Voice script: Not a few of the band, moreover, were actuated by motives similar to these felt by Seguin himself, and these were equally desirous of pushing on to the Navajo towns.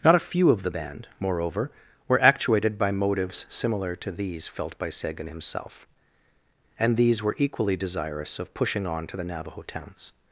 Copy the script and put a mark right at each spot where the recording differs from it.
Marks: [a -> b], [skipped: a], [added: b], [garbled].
Not a few of the band, moreover, were actuated by motives similar to these felt by Seguin himself, and these were equally desirous of pushing on to the Navajo towns.